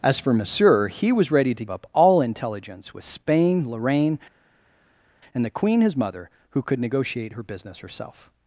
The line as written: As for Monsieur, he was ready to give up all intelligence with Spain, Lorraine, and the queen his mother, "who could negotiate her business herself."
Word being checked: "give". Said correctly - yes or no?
no